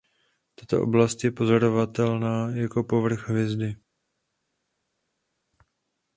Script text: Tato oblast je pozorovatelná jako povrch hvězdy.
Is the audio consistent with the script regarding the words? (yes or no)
yes